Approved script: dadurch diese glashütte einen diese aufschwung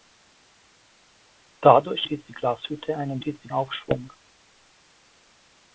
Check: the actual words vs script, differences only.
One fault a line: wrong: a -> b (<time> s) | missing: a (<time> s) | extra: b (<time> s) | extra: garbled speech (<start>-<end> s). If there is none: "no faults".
no faults